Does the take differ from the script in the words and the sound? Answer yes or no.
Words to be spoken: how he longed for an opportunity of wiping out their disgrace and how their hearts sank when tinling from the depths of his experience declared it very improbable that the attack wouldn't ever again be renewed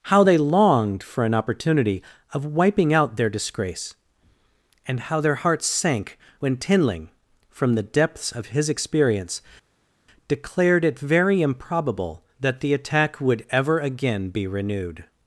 yes